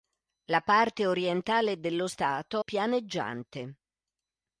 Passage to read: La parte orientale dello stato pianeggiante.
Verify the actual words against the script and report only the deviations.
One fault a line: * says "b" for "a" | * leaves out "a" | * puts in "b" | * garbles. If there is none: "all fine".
all fine